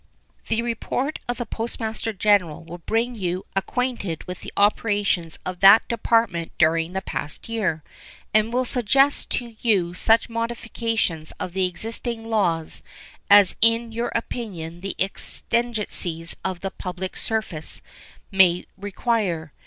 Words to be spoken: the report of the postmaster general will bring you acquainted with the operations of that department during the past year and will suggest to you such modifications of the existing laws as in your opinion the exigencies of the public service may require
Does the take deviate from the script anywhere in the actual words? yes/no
no